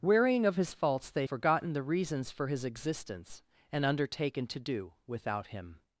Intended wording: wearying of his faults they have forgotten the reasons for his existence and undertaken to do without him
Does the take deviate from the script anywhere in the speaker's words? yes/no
yes